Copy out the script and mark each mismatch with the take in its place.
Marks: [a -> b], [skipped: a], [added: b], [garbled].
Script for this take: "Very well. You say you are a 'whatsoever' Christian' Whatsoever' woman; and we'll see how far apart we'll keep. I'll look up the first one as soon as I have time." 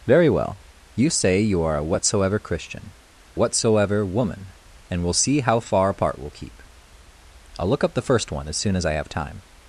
"Very well. You say you are a 'whatsoever' Christian' Whatsoever' woman; and we'll see how far apart we'll keep. I'll look up the first one as soon as I have time."